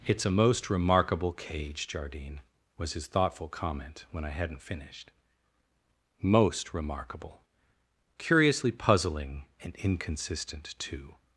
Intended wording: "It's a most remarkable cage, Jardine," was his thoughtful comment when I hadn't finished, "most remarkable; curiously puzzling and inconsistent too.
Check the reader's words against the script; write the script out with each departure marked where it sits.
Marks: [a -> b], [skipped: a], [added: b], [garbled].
"It's a most remarkable cage, Jardine," was his thoughtful comment when I hadn't finished, "most remarkable; curiously puzzling and inconsistent too.